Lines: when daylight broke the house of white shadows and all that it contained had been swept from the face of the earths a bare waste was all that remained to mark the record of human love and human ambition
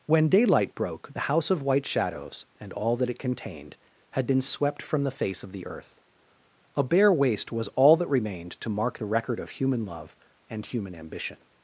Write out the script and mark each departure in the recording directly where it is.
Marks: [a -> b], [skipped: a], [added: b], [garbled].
when daylight broke the house of white shadows and all that it contained had been swept from the face of the [earths -> earth] a bare waste was all that remained to mark the record of human love and human ambition